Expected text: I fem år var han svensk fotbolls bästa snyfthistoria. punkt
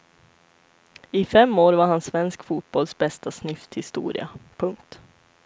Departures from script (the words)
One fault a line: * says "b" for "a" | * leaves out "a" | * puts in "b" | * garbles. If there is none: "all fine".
all fine